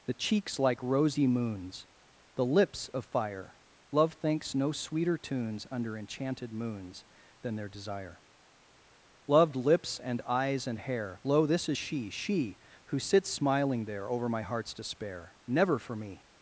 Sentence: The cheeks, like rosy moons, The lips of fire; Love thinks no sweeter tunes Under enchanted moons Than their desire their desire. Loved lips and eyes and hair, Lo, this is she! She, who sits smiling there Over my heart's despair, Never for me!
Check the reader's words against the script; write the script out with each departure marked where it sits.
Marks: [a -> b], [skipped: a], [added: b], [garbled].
The cheeks, like rosy moons, The lips of fire; Love thinks no sweeter tunes Under enchanted moons Than their desire [skipped: their desire.] Loved lips and eyes and hair, Lo, this is she! She, who sits smiling there Over my heart's despair, Never for me!